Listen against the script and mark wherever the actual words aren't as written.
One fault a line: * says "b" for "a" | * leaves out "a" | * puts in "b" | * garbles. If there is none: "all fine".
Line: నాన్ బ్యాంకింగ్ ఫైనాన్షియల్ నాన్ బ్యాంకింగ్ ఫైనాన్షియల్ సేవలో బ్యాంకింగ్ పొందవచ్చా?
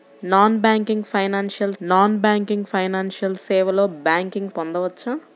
all fine